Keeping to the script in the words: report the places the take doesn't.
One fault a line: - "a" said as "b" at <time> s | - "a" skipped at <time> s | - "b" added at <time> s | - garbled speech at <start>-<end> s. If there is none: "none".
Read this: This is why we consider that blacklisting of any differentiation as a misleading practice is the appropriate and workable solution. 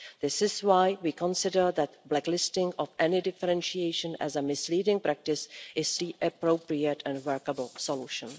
none